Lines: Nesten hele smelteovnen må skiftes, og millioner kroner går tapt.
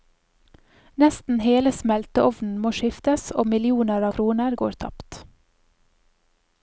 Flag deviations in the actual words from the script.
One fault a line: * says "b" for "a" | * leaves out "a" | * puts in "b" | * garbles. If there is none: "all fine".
all fine